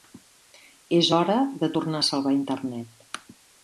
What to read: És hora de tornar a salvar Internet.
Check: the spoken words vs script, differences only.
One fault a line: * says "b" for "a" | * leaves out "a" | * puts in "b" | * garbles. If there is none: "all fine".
all fine